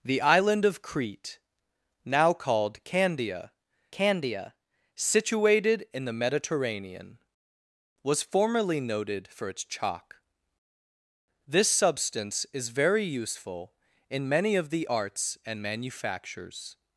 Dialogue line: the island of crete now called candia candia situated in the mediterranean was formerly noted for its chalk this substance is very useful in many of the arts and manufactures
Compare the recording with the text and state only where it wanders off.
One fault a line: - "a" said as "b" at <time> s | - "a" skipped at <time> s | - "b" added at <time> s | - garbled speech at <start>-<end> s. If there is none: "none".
none